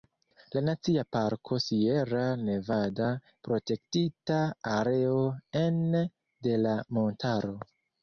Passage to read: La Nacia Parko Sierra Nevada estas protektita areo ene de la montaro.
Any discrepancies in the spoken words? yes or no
yes